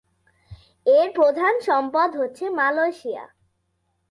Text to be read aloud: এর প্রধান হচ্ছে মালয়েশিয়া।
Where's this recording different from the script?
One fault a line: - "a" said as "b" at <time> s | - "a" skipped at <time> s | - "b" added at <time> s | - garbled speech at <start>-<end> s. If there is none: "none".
- "সম্পদ" added at 1.6 s